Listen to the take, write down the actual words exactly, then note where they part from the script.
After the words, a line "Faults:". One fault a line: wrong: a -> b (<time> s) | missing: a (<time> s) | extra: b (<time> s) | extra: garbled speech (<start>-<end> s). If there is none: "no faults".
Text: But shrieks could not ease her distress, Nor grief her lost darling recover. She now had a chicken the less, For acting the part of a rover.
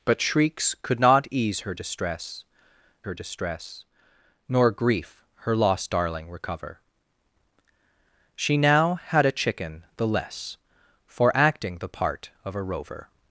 But shrieks could not ease her distress her distress, Nor grief her lost darling recover. She now had a chicken the less, For acting the part of a rover.
Faults:
extra: her distress (3.0 s)